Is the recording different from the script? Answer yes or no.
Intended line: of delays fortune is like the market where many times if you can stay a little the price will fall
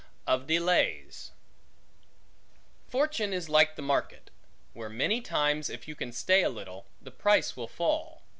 no